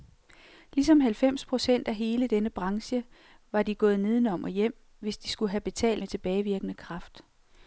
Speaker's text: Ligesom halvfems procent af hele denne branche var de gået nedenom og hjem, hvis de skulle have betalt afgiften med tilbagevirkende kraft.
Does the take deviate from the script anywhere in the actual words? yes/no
yes